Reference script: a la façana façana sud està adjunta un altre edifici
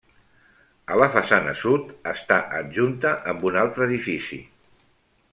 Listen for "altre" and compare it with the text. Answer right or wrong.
right